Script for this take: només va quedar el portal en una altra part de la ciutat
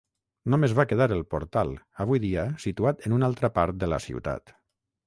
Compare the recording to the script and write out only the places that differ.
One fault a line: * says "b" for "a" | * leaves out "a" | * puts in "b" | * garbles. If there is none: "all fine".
* puts in "avui dia situat"